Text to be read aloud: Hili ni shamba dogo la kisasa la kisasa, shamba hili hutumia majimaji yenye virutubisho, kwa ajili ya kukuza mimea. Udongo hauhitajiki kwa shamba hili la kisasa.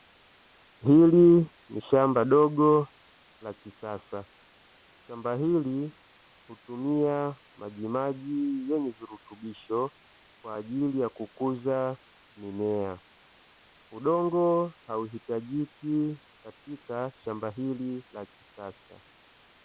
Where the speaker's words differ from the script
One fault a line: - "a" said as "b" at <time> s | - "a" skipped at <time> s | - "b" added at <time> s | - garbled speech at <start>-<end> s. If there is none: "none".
- "la kisasa" skipped at 4.2 s
- "kwa" said as "katika" at 16.4 s